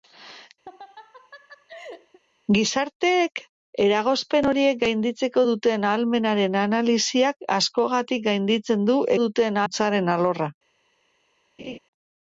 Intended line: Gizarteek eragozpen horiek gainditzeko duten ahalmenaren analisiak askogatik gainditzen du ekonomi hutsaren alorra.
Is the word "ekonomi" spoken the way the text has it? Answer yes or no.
no